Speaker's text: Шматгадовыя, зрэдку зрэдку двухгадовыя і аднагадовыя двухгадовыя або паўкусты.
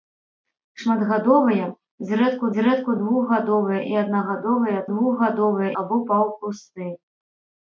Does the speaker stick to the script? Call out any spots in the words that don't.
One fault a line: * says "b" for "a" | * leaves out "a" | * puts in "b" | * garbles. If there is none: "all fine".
all fine